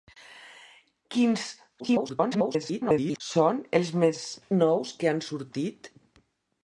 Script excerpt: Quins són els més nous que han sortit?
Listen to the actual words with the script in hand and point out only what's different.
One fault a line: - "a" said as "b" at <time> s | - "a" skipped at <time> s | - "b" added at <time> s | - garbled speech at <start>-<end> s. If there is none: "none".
- garbled speech at 1.8-3.2 s